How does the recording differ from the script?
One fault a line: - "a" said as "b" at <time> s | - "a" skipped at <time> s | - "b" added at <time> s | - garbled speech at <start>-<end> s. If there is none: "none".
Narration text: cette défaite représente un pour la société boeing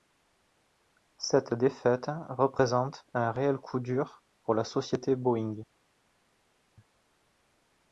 - "réel coup dur" added at 3.3 s